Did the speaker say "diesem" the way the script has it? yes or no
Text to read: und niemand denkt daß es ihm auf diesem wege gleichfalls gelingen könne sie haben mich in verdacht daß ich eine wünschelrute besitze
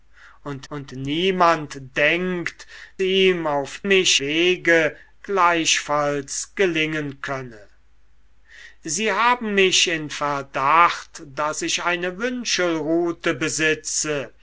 no